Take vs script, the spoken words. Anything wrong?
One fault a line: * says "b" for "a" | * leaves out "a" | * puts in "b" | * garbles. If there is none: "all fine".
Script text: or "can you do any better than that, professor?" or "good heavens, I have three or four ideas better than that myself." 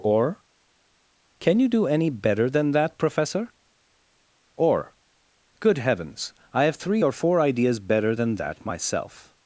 all fine